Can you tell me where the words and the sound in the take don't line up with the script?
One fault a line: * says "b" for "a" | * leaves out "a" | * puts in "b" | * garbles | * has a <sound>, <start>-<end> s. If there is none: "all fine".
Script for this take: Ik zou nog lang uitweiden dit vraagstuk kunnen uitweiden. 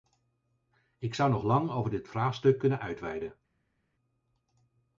* says "over" for "uitweiden"